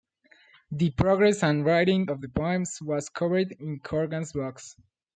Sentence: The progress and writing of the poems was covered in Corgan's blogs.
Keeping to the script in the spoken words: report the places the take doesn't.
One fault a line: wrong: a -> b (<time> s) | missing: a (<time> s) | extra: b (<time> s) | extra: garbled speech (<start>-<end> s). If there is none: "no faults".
no faults